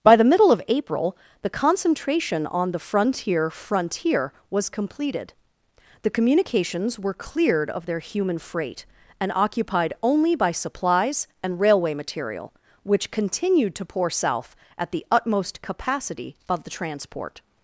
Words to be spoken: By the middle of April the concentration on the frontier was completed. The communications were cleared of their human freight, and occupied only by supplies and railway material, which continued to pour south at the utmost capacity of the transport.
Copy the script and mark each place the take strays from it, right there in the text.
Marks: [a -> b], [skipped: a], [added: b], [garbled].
By the middle of April the concentration on the frontier [added: frontier] was completed. The communications were cleared of their human freight, and occupied only by supplies and railway material, which continued to pour south at the utmost capacity of the transport.